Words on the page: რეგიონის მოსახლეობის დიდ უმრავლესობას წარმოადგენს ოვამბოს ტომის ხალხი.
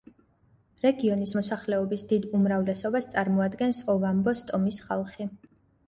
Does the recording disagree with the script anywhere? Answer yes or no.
no